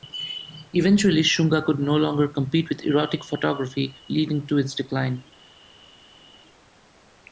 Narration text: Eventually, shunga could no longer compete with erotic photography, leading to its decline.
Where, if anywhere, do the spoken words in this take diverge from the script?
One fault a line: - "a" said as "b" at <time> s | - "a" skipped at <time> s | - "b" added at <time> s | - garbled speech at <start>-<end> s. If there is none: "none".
none